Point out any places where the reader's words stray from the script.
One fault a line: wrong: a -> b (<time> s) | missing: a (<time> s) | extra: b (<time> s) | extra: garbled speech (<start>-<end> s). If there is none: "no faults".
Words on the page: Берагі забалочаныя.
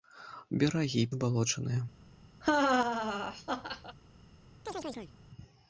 no faults